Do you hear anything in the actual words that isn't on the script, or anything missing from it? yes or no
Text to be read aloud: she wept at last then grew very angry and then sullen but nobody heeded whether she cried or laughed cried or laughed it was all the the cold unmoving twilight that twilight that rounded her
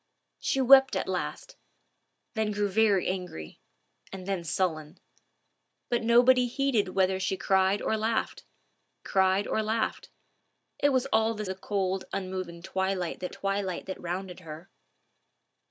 no